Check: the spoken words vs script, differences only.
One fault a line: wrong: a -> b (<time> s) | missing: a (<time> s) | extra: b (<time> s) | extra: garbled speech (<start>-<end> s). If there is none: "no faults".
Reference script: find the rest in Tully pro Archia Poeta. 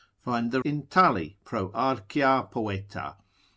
missing: rest (0.6 s)